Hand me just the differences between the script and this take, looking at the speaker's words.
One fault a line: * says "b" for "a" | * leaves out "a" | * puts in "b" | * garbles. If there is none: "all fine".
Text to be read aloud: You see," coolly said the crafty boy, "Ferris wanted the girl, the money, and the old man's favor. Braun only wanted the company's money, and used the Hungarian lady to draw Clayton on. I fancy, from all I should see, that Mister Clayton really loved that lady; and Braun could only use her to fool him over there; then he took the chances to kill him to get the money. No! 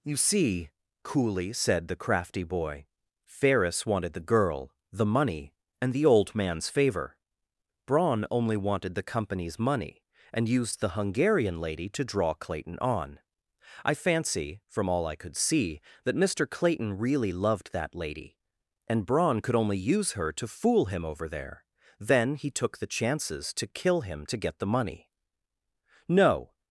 * says "could" for "should"